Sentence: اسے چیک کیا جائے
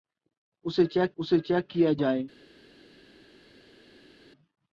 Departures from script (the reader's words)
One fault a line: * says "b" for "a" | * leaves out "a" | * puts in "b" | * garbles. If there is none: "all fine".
* puts in "اسے چیک"